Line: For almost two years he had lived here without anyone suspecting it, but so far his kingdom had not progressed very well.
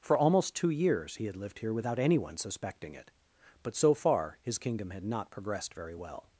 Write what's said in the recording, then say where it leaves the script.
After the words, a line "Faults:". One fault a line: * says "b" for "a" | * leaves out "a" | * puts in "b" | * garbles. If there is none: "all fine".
For almost two years he had lived here without anyone suspecting it, but so far his kingdom had not progressed very well.
Faults:
all fine